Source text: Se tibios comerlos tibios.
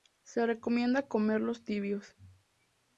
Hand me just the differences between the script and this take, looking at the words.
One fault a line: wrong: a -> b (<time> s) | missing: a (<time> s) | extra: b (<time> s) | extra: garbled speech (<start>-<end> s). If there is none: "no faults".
wrong: tibios -> recomienda (0.5 s)